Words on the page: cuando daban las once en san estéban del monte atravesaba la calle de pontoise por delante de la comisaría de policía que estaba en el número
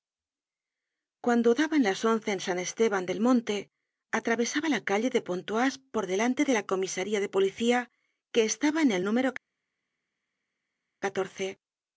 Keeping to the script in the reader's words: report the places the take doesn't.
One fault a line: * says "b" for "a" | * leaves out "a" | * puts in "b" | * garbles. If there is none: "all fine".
all fine